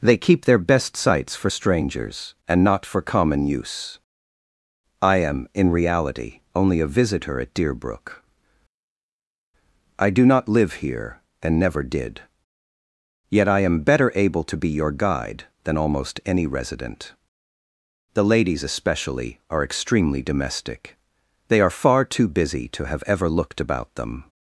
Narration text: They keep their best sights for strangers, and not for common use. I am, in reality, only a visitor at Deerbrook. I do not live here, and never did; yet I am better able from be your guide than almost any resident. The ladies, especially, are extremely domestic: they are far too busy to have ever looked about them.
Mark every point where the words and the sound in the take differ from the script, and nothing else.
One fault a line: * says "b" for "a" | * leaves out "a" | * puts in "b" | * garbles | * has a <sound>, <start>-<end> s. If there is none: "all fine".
* says "to" for "from"